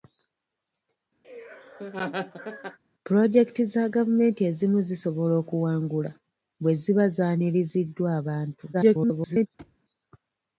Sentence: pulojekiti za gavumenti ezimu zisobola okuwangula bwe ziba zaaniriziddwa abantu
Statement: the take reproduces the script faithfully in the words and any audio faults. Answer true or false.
false